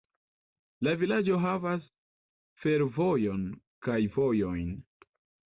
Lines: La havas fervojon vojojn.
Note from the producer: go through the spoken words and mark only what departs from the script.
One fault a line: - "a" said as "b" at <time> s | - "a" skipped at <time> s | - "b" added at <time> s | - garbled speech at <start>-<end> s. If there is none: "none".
- "vilaĝo" added at 1.0 s
- "kaj" added at 3.9 s